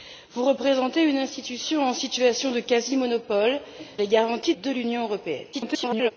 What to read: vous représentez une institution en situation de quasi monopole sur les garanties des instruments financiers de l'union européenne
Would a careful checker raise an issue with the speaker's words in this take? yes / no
yes